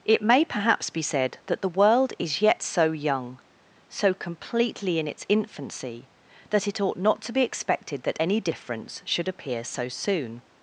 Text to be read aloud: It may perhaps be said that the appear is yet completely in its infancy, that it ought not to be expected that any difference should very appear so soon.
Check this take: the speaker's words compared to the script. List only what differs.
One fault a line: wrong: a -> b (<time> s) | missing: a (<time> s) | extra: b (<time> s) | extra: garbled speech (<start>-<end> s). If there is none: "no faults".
wrong: appear -> world (1.8 s)
extra: so young so (2.6 s)
missing: very (9.3 s)